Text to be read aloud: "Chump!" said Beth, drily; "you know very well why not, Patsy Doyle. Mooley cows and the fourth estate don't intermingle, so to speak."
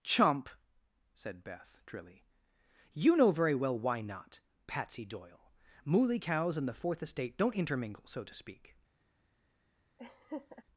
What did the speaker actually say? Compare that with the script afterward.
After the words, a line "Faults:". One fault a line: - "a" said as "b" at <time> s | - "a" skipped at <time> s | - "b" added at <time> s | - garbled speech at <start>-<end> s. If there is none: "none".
"Chump!" said Beth, drily; "you know very well why not, Patsy Doyle. Mooley cows and the fourth estate don't intermingle, so to speak."
Faults:
none